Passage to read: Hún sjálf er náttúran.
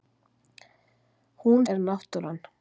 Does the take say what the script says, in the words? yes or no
no